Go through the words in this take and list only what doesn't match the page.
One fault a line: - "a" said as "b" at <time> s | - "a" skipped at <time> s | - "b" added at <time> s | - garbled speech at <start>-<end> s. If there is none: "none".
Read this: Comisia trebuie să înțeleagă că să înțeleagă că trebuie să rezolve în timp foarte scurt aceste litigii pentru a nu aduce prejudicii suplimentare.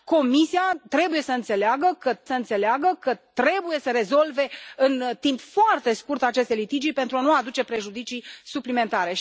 none